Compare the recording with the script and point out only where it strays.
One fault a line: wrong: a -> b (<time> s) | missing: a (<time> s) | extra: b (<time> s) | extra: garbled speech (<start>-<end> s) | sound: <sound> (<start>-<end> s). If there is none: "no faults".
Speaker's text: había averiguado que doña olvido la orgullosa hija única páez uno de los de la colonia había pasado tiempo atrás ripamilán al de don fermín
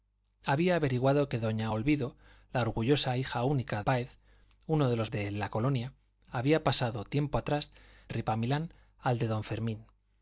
no faults